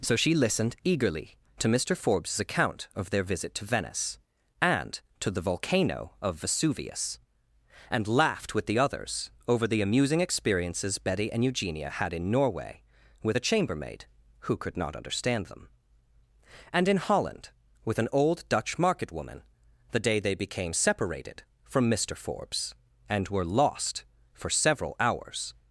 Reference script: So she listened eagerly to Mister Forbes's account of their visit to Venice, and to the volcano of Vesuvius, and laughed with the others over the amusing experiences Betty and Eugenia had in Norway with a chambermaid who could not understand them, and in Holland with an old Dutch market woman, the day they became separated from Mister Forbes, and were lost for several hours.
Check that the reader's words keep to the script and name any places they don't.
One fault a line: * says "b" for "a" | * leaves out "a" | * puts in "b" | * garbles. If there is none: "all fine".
all fine